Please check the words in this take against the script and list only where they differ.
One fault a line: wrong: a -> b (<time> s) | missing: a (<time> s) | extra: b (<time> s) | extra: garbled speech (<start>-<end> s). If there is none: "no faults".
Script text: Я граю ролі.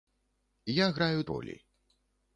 no faults